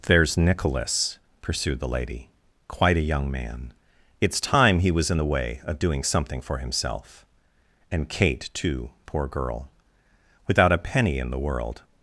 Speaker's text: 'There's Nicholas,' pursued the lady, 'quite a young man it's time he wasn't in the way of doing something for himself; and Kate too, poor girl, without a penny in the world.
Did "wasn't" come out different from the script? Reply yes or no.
yes